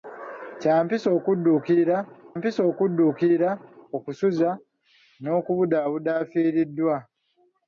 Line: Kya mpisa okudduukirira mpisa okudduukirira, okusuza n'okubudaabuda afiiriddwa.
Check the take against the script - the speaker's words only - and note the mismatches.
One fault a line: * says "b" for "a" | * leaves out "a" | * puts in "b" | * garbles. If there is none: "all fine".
all fine